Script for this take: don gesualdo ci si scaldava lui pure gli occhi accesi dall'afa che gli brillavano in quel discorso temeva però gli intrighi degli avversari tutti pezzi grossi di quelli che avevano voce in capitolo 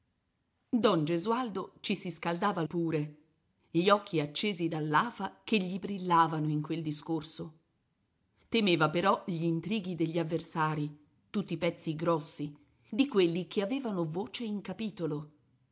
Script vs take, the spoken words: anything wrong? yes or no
yes